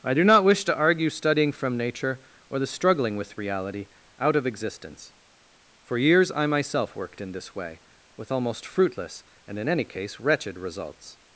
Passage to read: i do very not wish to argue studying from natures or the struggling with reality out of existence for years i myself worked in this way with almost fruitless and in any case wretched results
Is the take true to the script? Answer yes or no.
no